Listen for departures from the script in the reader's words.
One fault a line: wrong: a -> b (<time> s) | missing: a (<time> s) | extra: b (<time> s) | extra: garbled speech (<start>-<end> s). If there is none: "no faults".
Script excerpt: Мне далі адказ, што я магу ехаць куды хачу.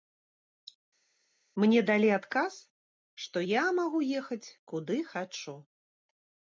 no faults